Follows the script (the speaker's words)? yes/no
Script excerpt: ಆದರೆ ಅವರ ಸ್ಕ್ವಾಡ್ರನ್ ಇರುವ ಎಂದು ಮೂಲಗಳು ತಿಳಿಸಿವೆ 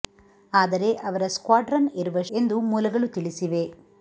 yes